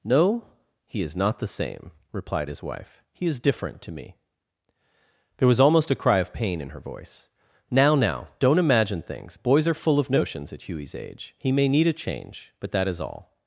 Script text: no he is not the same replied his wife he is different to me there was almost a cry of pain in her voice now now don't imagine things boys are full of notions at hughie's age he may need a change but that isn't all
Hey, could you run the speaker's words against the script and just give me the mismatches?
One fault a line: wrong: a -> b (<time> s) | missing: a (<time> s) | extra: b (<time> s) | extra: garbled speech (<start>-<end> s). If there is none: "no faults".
wrong: isn't -> is (12.9 s)